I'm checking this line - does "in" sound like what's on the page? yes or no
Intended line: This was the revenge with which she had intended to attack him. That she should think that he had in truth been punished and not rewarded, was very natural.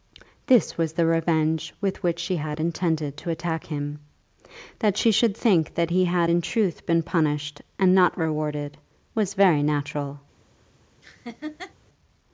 yes